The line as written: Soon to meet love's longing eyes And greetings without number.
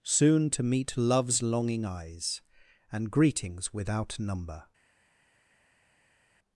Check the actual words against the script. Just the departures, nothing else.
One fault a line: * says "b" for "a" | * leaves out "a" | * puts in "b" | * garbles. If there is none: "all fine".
all fine